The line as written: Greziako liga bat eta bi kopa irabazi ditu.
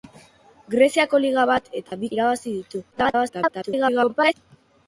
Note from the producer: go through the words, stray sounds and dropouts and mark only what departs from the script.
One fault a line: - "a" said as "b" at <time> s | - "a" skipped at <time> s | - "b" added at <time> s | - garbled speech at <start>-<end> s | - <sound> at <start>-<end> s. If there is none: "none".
- dropout at 1.9-1.9 s
- "kopa" skipped at 2.1 s
- garbled speech at 2.9-4.3 s